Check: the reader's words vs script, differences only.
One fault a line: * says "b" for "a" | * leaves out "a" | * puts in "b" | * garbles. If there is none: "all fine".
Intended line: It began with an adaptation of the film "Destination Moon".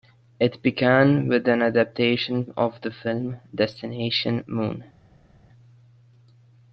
all fine